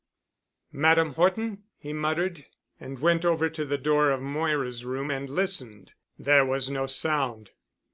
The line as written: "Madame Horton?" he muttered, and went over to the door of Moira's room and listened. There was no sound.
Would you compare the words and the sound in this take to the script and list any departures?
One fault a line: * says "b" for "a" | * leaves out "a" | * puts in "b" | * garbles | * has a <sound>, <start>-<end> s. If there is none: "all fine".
all fine